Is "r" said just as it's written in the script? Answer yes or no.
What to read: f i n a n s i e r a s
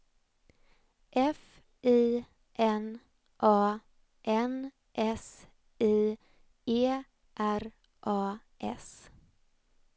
yes